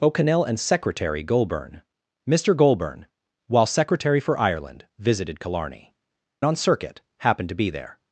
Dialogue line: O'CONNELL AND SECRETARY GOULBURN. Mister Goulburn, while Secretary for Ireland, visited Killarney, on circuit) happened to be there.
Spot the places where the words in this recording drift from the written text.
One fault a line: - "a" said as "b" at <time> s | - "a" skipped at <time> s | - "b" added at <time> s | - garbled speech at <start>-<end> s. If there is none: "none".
none